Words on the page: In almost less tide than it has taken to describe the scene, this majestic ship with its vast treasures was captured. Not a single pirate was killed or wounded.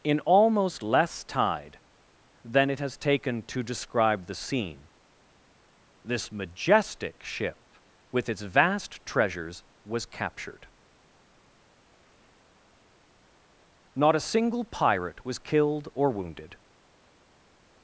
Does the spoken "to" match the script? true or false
true